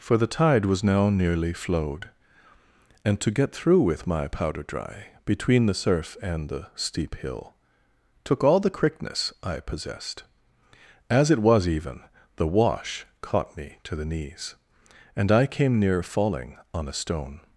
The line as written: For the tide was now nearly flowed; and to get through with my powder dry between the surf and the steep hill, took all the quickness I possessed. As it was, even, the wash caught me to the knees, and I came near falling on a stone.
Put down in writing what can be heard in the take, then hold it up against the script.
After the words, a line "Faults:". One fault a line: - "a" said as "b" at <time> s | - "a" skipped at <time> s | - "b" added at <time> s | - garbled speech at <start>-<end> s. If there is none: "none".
For the tide was now nearly flowed; and to get through with my powder dry between the surf and the steep hill, took all the quickness I possessed. As it was, even, the wash caught me to the knees, and I came near falling on a stone.
Faults:
none